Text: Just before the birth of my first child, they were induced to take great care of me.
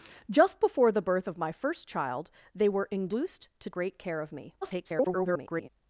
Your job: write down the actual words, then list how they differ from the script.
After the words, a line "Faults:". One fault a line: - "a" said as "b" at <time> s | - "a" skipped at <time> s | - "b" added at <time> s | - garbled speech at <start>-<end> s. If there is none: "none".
Just before the birth of my first child, they were induced to great care of me. [garbled]
Faults:
- "take" skipped at 3.7 s
- garbled speech at 4.6-5.7 s